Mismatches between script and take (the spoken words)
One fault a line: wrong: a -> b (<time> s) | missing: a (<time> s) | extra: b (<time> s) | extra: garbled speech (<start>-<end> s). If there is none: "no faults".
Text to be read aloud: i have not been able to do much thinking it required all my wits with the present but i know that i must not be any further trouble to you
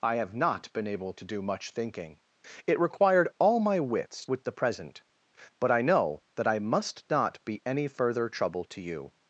no faults